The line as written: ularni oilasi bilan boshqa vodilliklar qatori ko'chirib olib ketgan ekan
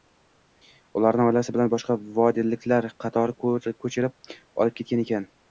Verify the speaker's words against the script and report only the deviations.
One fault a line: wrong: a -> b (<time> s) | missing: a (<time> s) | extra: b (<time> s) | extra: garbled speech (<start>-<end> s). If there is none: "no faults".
no faults